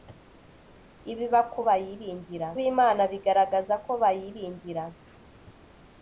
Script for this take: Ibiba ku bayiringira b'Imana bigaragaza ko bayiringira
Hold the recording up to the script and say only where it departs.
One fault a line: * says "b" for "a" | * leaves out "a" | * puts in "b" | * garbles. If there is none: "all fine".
all fine